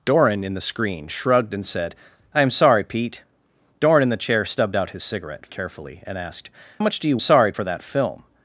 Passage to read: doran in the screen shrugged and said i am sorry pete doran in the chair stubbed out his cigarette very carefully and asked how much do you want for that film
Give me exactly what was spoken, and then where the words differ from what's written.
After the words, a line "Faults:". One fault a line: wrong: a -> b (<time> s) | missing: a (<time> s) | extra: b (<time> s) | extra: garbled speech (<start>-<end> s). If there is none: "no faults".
doran in the screen shrugged and said i am sorry pete doran in the chair stubbed out his cigarette carefully and asked much do you sorry for that film
Faults:
missing: very (5.5 s)
missing: how (6.5 s)
wrong: want -> sorry (7.2 s)